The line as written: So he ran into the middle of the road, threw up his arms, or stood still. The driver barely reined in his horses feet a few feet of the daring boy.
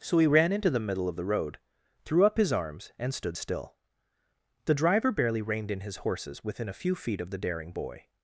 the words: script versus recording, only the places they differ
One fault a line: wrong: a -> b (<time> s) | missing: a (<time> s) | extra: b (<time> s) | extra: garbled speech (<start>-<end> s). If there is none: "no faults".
wrong: or -> and (3.0 s)
wrong: feet -> within (6.4 s)